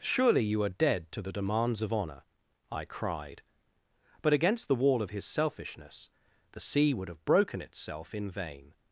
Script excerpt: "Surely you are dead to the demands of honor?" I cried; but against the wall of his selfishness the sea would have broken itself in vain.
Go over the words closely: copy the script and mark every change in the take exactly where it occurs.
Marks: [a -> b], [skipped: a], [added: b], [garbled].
"Surely you are dead to the demands of honor?" I cried; but against the wall of his selfishness the sea would have broken itself in vain.